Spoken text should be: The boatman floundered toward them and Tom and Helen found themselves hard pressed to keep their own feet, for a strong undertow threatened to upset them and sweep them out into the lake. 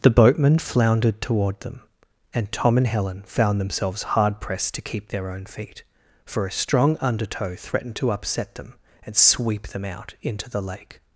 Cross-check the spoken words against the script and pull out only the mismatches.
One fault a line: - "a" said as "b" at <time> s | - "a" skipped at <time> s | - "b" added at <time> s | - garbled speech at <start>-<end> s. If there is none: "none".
none